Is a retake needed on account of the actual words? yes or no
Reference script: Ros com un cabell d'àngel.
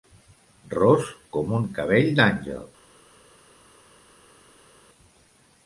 no